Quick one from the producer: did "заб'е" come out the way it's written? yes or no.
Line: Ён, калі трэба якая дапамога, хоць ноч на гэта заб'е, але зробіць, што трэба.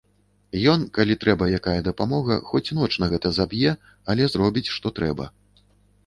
yes